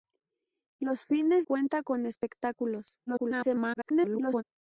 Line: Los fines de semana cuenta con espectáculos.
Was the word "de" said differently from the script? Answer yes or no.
yes